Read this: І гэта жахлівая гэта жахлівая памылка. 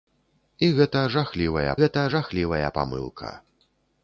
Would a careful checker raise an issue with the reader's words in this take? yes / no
no